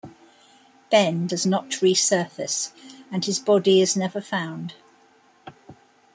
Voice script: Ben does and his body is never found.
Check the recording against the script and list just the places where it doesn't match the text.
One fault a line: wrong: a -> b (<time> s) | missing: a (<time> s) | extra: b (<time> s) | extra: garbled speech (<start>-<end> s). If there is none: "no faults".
extra: not resurface (1.4 s)